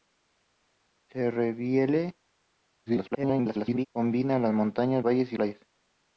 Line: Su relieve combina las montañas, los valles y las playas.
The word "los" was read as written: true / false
false